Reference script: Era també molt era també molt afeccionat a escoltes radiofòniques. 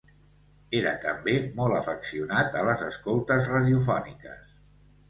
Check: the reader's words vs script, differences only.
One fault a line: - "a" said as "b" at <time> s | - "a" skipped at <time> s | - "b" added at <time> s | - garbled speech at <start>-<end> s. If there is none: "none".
- "era també molt" skipped at 1.8 s
- "les" added at 2.7 s